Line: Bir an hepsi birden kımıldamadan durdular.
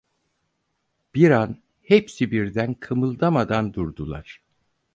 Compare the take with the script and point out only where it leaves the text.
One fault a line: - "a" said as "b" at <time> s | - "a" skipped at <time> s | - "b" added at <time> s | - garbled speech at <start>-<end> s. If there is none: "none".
none